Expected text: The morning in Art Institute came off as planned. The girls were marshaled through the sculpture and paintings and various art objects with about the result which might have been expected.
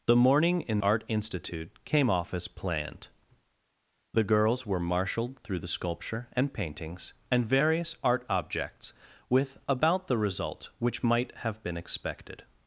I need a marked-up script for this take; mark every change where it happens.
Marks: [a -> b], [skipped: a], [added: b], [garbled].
The morning in Art Institute came off as planned. The girls were marshaled through the sculpture and paintings and various art objects with about the result which might have been expected.